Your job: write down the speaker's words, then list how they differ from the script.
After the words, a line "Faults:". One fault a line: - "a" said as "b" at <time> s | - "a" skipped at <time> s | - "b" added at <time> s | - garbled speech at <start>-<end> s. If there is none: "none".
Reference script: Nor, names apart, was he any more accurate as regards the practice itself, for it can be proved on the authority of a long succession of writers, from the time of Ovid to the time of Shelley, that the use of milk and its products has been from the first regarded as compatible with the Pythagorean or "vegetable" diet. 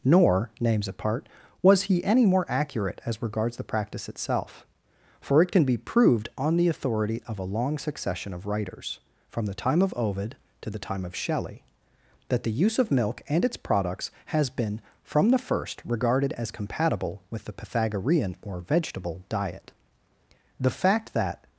Nor, names apart, was he any more accurate as regards the practice itself, for it can be proved on the authority of a long succession of writers, from the time of Ovid to the time of Shelley, that the use of milk and its products has been from the first regarded as compatible with the Pythagorean or "vegetable" diet. The fact that
Faults:
- "The fact that" added at 20.6 s